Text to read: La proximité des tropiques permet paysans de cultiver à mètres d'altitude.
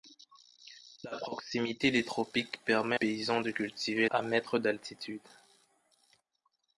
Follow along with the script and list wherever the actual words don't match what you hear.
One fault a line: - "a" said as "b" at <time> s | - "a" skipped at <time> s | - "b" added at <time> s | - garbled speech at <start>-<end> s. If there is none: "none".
none